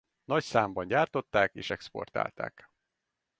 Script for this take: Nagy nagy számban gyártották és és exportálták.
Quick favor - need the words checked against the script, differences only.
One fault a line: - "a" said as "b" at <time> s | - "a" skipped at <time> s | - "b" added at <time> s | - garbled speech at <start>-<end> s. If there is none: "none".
- "nagy" skipped at 0.4 s
- "és" skipped at 1.7 s